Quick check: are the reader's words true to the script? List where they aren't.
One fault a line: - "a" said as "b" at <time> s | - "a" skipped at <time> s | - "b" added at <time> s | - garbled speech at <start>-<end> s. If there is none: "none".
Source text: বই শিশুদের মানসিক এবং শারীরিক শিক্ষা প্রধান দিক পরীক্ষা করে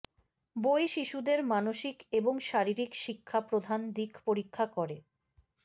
none